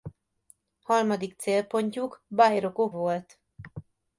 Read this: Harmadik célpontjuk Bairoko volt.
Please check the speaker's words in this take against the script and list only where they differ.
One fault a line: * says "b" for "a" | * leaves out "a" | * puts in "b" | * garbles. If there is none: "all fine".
all fine